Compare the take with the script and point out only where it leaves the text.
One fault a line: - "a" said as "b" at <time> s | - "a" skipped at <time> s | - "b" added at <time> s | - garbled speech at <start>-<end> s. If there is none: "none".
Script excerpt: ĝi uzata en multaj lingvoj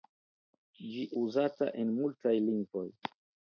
none